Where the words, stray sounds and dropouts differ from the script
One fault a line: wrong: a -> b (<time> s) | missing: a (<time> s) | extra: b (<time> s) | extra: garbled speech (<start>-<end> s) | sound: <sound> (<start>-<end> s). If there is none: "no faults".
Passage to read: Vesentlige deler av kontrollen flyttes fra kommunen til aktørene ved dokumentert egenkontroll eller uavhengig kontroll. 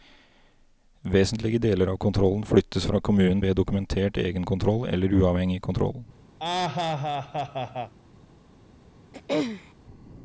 missing: til aktørene (3.4 s)
sound: laugh (6.4-7.9 s)
sound: throat clearing (9.1-9.7 s)